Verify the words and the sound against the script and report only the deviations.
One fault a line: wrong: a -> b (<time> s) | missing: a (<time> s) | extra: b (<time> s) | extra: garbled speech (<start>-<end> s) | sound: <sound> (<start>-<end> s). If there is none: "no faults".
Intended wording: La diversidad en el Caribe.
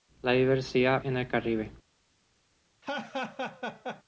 sound: laugh (2.8-4.0 s)